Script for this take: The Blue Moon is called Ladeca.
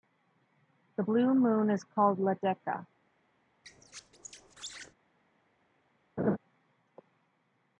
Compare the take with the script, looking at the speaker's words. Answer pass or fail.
pass